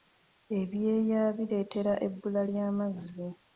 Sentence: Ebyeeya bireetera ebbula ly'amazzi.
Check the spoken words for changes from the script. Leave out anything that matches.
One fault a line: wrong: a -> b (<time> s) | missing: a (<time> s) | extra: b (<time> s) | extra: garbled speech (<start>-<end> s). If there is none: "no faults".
no faults